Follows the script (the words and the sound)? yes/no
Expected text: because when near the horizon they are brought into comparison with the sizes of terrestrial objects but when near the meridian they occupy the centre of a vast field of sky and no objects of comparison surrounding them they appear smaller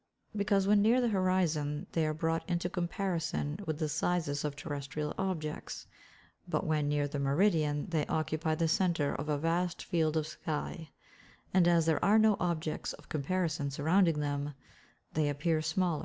no